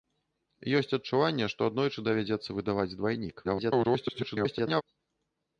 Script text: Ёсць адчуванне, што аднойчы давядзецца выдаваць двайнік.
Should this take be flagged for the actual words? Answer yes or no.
yes